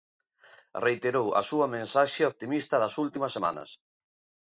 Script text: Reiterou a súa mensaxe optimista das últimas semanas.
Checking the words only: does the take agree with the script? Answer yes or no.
yes